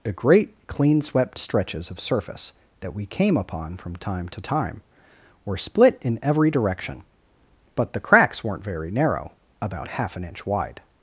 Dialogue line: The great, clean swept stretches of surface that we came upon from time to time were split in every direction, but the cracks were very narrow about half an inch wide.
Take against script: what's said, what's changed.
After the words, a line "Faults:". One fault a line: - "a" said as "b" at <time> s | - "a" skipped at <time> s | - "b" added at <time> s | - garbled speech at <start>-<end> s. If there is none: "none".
The great, clean swept stretches of surface that we came upon from time to time were split in every direction, but the cracks weren't very narrow about half an inch wide.
Faults:
- "were" said as "weren't" at 8.4 s